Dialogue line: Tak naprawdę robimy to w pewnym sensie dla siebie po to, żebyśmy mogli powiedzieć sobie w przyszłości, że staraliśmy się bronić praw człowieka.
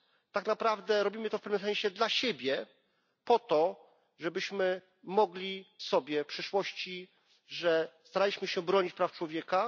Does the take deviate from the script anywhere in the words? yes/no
yes